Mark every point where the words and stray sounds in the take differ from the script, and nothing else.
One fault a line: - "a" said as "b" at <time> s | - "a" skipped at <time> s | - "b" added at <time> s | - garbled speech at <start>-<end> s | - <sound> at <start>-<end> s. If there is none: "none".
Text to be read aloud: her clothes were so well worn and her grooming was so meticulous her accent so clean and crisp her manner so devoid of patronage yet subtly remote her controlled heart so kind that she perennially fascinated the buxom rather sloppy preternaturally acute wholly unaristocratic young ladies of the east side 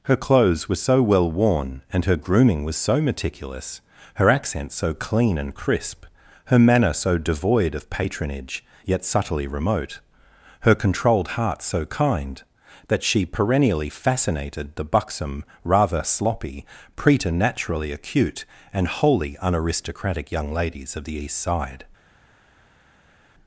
- "and" added at 18.7 s